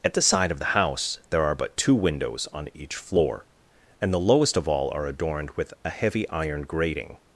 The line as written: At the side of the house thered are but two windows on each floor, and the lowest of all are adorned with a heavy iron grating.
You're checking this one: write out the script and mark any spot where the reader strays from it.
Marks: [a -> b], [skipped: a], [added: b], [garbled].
At the side of the house [thered -> there] are but two windows on each floor, and the lowest of all are adorned with a heavy iron grating.